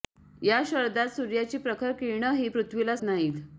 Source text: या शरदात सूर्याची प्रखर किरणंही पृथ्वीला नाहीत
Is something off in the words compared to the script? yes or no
no